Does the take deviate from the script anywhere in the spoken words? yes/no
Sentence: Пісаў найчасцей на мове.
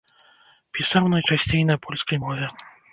yes